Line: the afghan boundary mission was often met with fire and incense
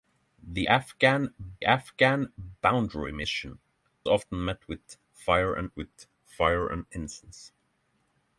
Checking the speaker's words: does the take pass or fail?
fail